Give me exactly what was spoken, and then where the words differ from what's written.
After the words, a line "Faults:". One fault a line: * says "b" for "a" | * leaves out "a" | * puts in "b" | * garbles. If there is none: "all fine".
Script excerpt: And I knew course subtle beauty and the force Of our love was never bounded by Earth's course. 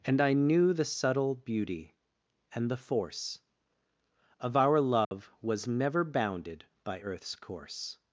And I knew the subtle beauty and the force Of our love was never bounded by Earth's course.
Faults:
* says "the" for "course"